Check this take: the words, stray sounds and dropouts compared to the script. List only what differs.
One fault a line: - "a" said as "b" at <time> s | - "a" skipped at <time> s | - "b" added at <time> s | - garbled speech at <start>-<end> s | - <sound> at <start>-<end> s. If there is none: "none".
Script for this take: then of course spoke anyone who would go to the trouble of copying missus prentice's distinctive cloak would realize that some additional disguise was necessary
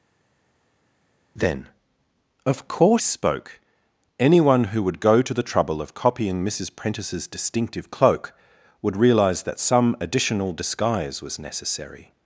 none